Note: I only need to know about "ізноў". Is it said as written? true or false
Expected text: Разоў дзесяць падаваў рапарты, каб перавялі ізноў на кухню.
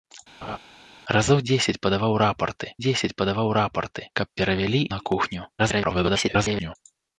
false